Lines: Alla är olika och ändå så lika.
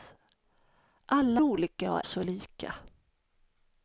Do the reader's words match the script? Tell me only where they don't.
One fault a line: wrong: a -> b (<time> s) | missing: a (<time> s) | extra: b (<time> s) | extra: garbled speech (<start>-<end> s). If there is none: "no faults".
missing: är (1.4 s)
missing: ändå (2.0 s)